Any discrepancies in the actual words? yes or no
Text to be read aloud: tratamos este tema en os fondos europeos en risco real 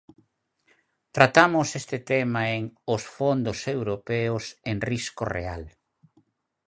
no